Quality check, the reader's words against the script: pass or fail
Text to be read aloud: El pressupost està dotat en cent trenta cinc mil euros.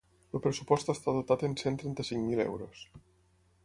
pass